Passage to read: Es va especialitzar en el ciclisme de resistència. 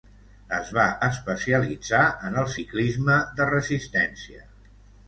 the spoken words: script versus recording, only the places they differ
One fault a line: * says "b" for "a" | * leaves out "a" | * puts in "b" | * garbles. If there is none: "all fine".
all fine